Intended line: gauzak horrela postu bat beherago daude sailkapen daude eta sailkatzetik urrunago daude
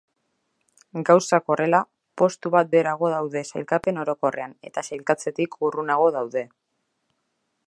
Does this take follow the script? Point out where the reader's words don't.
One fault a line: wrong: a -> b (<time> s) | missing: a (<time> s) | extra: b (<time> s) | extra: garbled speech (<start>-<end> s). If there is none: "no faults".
wrong: daude -> orokorrean (4.1 s)